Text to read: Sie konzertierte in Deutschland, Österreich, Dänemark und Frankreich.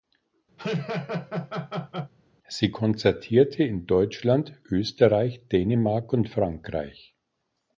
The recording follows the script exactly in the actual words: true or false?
true